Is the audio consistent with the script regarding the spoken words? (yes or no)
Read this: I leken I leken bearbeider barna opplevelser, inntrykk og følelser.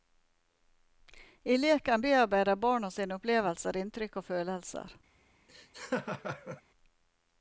no